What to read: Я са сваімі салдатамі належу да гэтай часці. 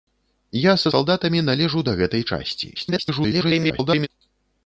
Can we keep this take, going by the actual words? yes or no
no